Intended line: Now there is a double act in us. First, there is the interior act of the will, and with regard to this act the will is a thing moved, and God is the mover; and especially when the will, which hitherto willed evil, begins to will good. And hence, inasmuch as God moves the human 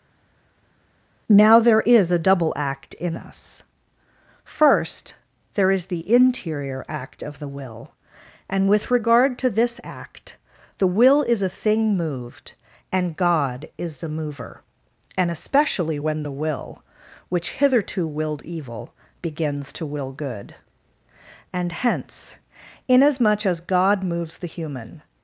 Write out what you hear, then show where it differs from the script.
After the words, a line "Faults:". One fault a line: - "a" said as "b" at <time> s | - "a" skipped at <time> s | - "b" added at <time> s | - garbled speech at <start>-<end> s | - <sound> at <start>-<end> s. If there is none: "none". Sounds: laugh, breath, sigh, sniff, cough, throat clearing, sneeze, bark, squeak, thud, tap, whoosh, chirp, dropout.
Now there is a double act in us. First, there is the interior act of the will, and with regard to this act the will is a thing moved, and God is the mover; and especially when the will, which hitherto willed evil, begins to will good. And hence, inasmuch as God moves the human
Faults:
none